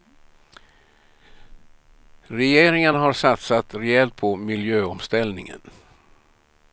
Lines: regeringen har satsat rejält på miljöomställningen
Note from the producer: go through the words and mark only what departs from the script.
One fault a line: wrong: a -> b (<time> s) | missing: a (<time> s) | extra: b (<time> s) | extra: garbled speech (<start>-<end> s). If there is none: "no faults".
no faults